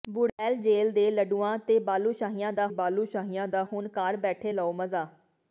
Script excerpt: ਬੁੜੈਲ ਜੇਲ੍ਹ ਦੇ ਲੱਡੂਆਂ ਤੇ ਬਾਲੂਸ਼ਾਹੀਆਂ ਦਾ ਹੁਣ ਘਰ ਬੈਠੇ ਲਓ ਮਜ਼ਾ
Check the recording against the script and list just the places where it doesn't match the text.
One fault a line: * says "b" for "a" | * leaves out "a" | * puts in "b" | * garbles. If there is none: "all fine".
* puts in "ਬਾਲੂਸ਼ਾਹੀਆਂ ਦਾ"